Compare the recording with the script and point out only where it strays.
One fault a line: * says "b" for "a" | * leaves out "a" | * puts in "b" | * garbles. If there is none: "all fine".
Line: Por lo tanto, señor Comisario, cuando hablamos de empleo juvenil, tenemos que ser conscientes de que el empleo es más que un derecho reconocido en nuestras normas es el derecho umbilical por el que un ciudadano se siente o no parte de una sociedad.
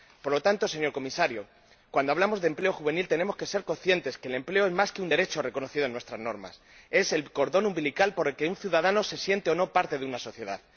* says "cordón" for "derecho"